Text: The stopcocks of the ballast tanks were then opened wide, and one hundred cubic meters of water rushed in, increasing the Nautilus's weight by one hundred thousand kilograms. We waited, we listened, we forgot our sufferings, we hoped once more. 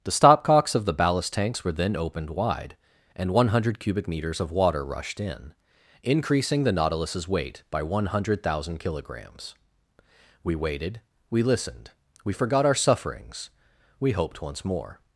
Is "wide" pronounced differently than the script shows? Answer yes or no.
no